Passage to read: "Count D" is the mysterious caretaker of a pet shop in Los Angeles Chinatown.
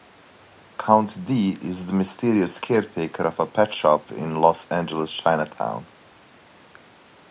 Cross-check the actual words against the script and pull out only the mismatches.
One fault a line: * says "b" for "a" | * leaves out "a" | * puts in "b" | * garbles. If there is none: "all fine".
all fine